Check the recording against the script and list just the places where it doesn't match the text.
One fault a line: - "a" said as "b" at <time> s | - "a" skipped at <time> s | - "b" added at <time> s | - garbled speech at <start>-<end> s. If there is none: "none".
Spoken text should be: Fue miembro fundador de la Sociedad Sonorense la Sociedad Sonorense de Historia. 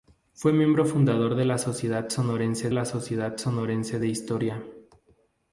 none